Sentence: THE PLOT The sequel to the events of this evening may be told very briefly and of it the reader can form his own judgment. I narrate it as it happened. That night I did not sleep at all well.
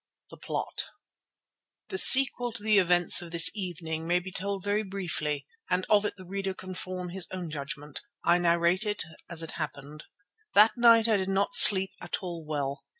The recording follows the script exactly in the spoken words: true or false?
true